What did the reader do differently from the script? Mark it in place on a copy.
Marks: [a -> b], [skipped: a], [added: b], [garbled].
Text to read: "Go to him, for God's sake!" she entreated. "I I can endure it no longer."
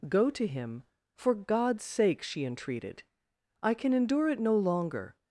"Go to him, for God's sake!" she entreated. "I [skipped: I] can endure it no longer."